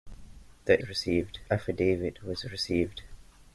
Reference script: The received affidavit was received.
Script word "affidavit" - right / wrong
right